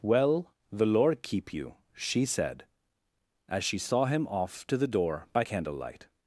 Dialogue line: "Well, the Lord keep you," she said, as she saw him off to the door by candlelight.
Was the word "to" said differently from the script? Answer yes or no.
no